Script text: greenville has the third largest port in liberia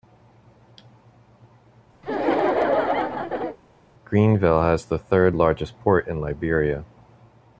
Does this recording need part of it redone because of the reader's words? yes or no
no